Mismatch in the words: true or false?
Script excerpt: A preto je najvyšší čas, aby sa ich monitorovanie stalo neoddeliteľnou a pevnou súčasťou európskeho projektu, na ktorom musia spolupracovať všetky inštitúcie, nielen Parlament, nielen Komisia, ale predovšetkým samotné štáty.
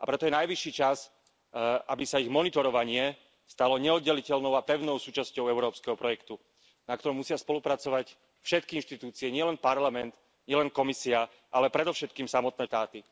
false